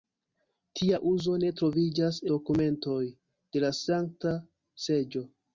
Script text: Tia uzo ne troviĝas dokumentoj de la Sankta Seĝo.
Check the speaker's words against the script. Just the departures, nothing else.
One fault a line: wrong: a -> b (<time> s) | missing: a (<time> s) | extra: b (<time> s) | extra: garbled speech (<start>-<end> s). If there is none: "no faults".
no faults